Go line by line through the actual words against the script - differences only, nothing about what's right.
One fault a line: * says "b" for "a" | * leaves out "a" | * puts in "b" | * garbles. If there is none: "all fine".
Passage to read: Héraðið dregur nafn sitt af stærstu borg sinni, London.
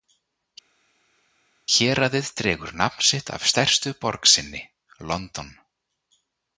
all fine